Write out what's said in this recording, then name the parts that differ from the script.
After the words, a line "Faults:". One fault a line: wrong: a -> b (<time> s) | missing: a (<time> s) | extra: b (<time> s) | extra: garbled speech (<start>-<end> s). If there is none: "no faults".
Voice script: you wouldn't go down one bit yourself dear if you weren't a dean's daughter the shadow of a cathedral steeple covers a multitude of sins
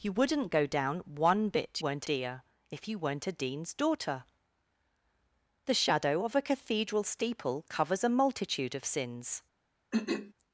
you wouldn't go down one bit weren't dear if you weren't a dean's daughter the shadow of a cathedral steeple covers a multitude of sins
Faults:
wrong: yourself -> weren't (1.8 s)